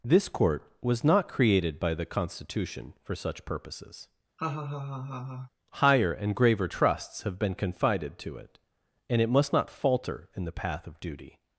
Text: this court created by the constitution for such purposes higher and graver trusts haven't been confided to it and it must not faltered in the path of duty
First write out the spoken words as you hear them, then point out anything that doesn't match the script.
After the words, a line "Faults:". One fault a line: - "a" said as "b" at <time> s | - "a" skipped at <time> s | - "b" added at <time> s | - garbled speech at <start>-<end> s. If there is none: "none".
this court was not created by the constitution for such purposes higher and graver trusts have been confided to it and it must not falter in the path of duty
Faults:
- "was not" added at 0.8 s
- "haven't" said as "have" at 7.2 s
- "faltered" said as "falter" at 9.7 s